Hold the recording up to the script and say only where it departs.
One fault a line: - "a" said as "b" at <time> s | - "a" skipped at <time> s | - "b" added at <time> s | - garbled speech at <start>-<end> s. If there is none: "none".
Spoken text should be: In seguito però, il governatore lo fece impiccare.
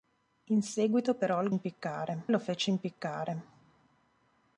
- "governatore" said as "impiccare" at 1.5 s